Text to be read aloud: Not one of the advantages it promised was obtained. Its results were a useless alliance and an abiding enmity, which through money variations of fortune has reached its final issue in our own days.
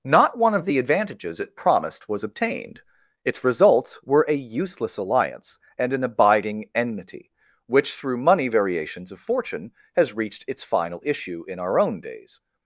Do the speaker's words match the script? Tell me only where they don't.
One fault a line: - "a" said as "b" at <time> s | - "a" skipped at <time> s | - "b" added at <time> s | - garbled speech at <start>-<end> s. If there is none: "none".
none